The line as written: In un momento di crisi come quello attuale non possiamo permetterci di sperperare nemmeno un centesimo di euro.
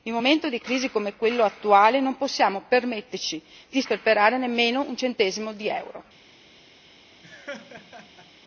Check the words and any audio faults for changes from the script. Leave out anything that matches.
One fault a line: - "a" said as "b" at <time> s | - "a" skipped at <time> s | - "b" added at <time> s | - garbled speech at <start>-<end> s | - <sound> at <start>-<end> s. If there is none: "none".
- laugh at 7.2-8.3 s